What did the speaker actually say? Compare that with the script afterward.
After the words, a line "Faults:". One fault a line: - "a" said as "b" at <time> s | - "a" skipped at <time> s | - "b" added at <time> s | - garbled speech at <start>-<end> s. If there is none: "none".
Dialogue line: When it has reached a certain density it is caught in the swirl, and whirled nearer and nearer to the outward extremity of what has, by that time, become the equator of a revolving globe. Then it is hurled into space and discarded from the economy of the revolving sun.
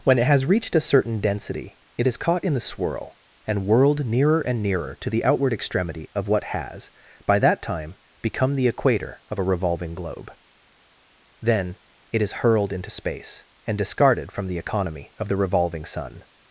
When it has reached a certain density it is caught in the swirl, and whirled nearer and nearer to the outward extremity of what has, by that time, become the equator of a revolving globe. Then it is hurled into space and discarded from the economy of the revolving sun.
Faults:
none